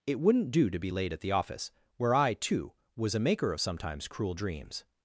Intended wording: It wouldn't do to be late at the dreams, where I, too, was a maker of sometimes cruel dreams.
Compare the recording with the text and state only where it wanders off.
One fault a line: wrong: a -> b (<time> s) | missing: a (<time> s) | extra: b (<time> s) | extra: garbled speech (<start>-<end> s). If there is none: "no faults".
wrong: dreams -> office (1.3 s)